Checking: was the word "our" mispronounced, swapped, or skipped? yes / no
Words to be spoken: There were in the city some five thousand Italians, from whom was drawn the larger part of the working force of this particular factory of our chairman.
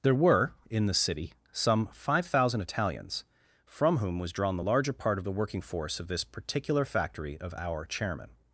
no